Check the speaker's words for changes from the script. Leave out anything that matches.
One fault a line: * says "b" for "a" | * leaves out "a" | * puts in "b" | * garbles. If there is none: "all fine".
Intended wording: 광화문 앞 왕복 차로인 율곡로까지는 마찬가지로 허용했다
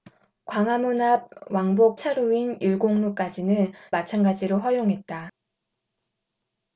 all fine